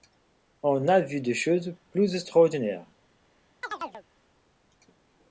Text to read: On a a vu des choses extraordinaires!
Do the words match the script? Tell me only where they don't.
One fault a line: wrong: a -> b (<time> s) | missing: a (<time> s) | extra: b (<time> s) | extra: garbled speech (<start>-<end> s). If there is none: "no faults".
missing: a (1.0 s)
extra: plus (1.9 s)